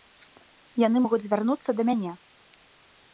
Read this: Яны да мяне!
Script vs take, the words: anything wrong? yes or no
yes